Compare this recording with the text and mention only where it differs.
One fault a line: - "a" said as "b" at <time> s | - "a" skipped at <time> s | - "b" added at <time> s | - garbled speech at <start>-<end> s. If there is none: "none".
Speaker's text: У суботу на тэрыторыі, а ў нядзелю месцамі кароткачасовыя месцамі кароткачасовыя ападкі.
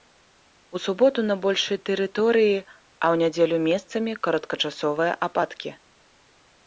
- "большай" added at 1.4 s
- "месцамі кароткачасовыя" skipped at 5.1 s